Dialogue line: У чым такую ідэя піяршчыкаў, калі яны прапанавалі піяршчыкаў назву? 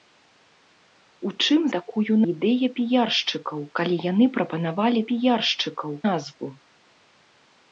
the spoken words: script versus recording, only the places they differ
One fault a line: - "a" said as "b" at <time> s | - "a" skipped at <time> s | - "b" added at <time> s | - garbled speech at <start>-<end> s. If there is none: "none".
none